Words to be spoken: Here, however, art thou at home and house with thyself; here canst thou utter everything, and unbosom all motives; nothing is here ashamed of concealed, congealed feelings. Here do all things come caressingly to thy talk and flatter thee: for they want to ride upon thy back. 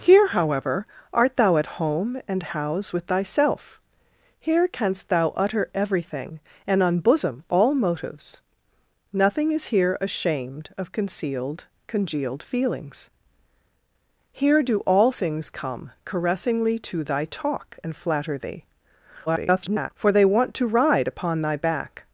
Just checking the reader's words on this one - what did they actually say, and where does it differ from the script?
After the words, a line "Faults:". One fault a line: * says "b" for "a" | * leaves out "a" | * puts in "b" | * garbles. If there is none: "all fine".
Here, however, art thou at home and house with thyself; here canst thou utter everything, and unbosom all motives; nothing is here ashamed of concealed, congealed feelings. Here do all things come caressingly to thy talk and flatter thee: [garbled] for they want to ride upon thy back.
Faults:
* garbles